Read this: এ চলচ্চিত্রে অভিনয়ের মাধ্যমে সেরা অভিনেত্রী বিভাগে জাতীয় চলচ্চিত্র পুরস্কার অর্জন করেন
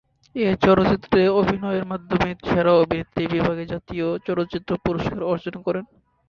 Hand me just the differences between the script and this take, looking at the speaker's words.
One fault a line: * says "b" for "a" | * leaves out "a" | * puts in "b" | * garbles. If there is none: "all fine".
all fine